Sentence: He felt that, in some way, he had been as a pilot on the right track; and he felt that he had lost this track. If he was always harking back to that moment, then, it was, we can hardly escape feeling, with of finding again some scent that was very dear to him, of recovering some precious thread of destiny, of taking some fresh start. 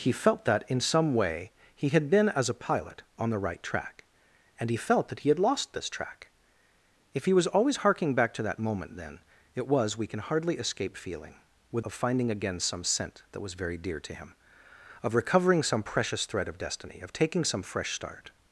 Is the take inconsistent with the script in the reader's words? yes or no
no